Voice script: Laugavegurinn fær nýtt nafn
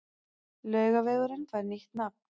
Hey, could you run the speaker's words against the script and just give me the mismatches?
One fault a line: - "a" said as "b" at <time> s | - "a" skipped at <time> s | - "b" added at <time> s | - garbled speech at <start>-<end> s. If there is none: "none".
none